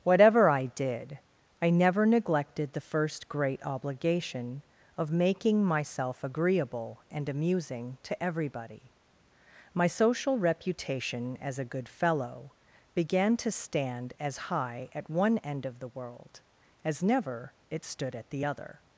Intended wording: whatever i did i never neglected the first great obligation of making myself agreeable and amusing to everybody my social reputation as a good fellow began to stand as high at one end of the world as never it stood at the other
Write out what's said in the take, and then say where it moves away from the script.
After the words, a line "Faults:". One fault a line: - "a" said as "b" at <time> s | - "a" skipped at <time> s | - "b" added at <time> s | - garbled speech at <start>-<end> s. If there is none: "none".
whatever i did i never neglected the first great obligation of making myself agreeable and amusing to everybody my social reputation as a good fellow began to stand as high at one end of the world as never it stood at the other
Faults:
none